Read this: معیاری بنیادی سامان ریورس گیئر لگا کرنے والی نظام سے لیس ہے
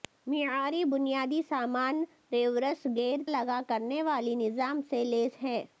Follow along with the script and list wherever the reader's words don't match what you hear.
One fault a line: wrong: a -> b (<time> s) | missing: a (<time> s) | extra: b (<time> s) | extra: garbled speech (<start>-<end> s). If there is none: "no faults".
no faults